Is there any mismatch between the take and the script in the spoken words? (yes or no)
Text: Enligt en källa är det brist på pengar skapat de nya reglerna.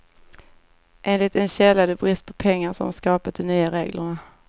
yes